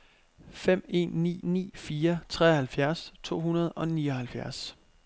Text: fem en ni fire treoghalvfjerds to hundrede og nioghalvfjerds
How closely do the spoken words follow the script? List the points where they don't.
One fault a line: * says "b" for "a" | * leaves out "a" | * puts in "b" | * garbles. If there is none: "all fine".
* puts in "ni"